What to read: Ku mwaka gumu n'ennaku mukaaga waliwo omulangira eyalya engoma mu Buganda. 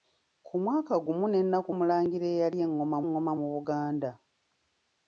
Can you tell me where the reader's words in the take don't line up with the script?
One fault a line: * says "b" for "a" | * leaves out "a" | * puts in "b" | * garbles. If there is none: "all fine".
* leaves out "mukaaga waliwo"
* puts in "engoma"